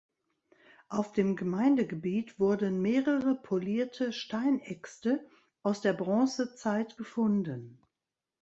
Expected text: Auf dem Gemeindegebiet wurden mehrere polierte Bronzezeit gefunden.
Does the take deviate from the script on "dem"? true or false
false